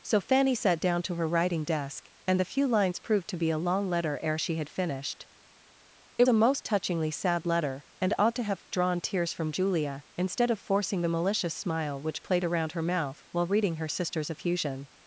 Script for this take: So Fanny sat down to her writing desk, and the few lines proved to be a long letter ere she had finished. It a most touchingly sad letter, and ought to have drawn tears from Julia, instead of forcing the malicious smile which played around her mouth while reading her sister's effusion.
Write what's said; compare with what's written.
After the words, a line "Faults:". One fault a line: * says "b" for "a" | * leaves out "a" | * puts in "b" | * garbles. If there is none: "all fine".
So Fanny sat down to her writing desk, and the few lines proved to be a long letter ere she had finished. It a most touchingly sad letter, and ought to have drawn tears from Julia, instead of forcing the malicious smile which played around her mouth while reading her sister's effusion.
Faults:
all fine